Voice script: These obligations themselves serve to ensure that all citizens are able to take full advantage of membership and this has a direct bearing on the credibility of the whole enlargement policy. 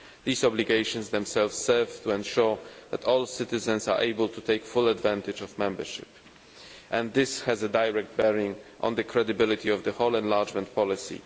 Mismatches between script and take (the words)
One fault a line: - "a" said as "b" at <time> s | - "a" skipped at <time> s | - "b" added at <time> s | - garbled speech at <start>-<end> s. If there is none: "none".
none